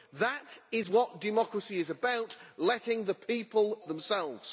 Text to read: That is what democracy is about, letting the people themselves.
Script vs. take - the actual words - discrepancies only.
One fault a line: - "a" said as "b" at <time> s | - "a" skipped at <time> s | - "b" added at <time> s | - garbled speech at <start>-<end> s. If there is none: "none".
none